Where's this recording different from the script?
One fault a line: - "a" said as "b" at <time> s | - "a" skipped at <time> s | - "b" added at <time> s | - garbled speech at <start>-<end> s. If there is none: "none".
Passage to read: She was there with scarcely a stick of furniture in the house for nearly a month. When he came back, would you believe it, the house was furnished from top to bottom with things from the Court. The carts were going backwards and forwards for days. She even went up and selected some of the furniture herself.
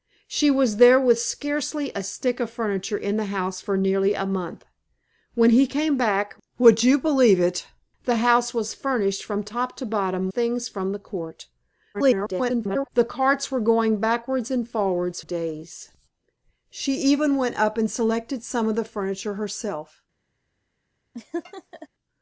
- "with" skipped at 10.3 s
- garbled speech at 11.9-12.9 s
- "for" skipped at 15.2 s